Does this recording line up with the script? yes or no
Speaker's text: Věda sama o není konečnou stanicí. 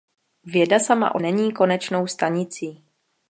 yes